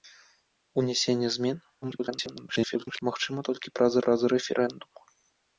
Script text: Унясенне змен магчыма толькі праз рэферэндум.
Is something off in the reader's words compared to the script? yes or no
yes